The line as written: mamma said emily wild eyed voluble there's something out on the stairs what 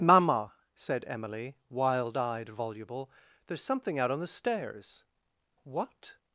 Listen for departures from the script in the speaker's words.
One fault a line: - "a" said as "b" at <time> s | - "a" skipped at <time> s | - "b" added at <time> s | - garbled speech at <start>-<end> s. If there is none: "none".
none